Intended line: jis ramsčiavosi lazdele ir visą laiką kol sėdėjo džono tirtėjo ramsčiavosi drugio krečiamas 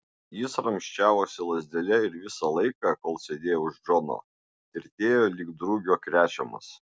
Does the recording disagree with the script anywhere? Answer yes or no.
yes